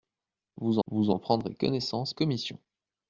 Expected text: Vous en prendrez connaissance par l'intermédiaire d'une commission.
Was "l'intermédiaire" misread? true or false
true